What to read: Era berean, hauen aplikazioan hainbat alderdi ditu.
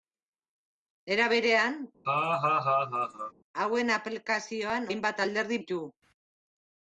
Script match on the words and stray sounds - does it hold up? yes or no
no